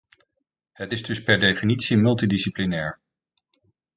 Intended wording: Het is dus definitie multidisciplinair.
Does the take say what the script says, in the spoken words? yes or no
no